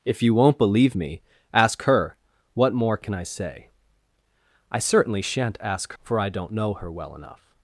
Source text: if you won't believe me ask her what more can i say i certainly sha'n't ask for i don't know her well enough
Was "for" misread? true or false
false